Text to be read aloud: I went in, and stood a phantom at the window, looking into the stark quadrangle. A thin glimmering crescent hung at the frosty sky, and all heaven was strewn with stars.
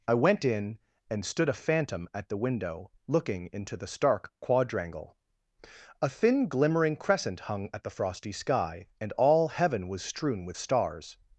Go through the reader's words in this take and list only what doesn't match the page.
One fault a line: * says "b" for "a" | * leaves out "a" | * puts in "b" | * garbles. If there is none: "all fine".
all fine